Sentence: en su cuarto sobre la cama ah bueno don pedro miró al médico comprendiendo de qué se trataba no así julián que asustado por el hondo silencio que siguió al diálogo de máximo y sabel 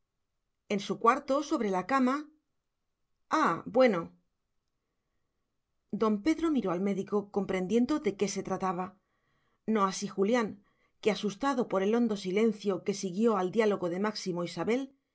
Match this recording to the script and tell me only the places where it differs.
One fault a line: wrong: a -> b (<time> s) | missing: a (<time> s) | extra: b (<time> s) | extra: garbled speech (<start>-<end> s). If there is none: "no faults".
no faults